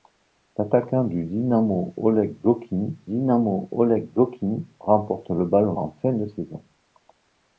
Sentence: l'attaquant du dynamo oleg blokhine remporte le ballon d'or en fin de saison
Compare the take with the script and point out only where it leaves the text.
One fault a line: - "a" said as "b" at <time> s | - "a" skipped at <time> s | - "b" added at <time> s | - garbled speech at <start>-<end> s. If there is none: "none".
- "dynamo oleg blokhine" added at 3.0 s
- "d'or" skipped at 5.8 s